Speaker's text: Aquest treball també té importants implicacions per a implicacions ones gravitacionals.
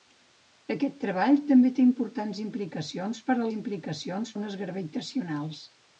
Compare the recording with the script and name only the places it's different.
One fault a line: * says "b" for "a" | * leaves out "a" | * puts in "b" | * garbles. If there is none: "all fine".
all fine